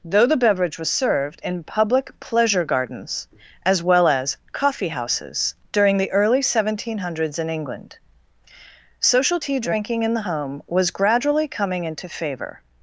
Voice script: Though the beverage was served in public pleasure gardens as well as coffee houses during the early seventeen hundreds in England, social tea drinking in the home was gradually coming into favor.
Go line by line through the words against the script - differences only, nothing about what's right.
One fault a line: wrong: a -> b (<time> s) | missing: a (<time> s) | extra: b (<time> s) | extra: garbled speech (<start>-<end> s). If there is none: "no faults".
no faults